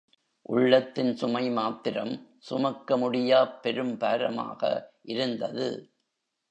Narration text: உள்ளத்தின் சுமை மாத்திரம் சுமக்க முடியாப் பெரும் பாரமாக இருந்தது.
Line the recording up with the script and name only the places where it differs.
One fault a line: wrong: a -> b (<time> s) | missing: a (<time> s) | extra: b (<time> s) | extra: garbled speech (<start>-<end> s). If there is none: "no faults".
no faults